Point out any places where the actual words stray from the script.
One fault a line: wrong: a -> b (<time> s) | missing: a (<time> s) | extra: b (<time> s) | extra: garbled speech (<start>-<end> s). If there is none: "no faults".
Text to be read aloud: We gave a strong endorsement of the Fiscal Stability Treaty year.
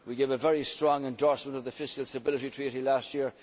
extra: very (0.4 s)
extra: last (2.8 s)